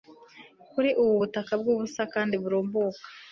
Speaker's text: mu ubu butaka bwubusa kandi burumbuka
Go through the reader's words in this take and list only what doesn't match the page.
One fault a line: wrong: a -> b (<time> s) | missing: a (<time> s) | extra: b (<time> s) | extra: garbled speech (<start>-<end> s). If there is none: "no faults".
wrong: mu -> kuri (0.7 s)